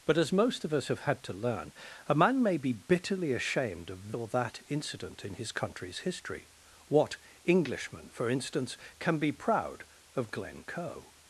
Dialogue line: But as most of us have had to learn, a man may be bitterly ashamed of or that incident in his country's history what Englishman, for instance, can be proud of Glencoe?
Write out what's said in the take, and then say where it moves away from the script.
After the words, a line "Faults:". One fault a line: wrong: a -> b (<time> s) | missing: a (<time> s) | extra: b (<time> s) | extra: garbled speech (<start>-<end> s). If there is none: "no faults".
But as most of us have had to learn, a man may be bitterly ashamed of or that incident in his country's history what Englishman, for instance, can be proud of Glencoe?
Faults:
no faults